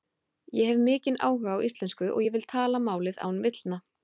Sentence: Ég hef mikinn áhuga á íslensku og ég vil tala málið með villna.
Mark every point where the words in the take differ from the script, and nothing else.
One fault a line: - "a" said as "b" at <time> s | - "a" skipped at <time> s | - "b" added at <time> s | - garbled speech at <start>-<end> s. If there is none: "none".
- "með" said as "án" at 3.3 s